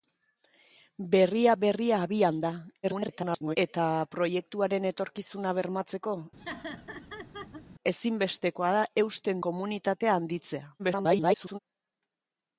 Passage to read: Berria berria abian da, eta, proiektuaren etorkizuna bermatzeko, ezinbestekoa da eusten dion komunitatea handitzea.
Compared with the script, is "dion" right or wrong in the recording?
wrong